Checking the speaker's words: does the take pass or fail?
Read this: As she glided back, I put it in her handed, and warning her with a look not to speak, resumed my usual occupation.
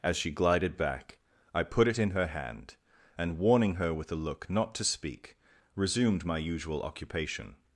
fail